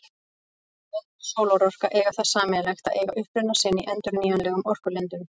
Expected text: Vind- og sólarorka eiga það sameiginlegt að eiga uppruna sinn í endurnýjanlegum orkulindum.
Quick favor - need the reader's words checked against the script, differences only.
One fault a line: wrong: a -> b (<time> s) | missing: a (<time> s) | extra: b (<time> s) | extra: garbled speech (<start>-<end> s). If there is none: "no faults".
no faults